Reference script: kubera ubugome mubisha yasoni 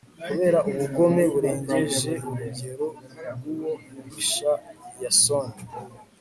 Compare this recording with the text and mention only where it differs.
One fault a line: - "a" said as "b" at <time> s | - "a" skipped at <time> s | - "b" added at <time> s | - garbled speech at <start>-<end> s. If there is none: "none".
- "burengeje urugero bw'uwo" added at 1.3 s